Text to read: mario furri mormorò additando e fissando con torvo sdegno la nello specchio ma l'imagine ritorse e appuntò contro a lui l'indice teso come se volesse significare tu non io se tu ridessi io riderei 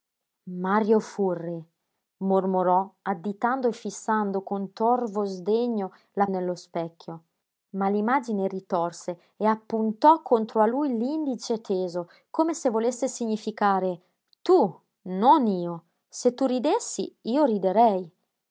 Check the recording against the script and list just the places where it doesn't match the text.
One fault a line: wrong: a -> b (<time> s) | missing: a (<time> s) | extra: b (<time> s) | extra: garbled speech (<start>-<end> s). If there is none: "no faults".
no faults